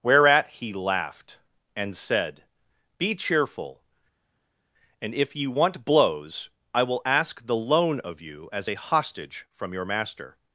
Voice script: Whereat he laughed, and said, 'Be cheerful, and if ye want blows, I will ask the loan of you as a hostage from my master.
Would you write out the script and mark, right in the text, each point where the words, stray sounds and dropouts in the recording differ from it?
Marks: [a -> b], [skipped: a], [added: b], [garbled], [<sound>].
Whereat he laughed, and said, 'Be cheerful, and if ye want blows, I will ask the loan of you as a hostage from [my -> your] master.